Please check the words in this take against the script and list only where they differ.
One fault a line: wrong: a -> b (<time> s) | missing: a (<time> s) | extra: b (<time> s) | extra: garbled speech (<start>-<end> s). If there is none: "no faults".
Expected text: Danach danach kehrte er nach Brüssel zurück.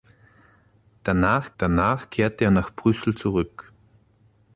no faults